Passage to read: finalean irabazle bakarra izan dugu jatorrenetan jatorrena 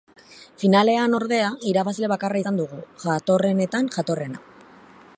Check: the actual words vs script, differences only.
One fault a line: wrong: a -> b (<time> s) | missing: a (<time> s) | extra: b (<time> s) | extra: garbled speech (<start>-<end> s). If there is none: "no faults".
extra: ordea (1.1 s)